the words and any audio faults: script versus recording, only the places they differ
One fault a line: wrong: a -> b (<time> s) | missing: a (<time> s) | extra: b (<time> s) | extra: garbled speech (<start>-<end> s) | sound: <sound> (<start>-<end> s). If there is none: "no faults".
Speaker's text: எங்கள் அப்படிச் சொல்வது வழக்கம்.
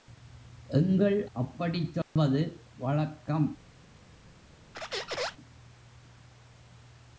sound: dropout (2.0-2.2 s)
sound: squeak (4.7-5.4 s)